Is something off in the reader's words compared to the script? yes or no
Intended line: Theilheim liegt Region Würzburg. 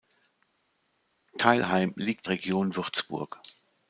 no